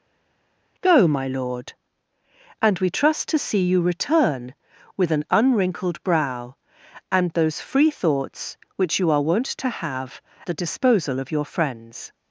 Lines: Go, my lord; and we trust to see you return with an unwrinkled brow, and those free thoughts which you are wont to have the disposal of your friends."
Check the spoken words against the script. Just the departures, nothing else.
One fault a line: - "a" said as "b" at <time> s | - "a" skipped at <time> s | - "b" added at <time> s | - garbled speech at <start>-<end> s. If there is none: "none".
none